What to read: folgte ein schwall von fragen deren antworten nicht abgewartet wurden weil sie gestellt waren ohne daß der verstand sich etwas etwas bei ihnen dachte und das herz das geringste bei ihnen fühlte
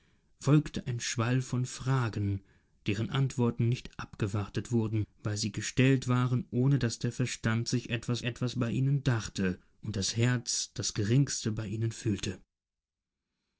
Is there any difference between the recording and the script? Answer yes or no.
no